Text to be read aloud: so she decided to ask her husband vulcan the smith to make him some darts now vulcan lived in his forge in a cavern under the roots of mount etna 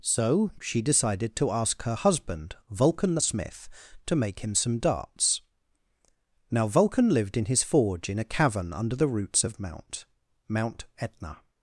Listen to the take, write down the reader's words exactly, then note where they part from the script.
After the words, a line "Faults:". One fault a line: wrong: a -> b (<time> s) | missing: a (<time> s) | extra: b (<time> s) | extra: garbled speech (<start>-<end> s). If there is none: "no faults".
so she decided to ask her husband vulcan the smith to make him some darts now vulcan lived in his forge in a cavern under the roots of mount mount etna
Faults:
extra: mount (10.5 s)